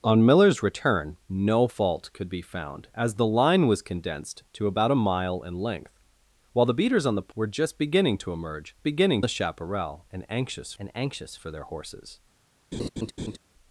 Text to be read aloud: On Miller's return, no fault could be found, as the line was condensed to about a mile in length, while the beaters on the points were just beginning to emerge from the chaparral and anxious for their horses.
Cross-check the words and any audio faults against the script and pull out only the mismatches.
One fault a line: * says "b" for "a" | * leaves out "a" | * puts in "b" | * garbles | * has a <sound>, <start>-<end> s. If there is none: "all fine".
* leaves out "points"
* says "beginning" for "from"
* puts in "and anxious"
* has a laugh, 12.7-13.4 s